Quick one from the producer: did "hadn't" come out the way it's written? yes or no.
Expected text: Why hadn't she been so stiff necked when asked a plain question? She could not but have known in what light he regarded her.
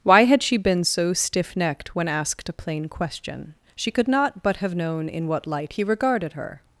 no